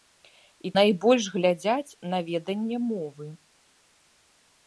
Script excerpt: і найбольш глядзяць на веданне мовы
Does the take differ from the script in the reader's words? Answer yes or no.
no